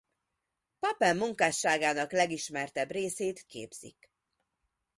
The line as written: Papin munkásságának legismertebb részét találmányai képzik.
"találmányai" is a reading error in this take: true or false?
true